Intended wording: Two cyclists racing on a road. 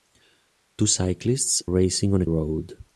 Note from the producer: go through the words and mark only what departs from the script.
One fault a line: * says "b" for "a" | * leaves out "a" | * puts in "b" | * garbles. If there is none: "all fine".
all fine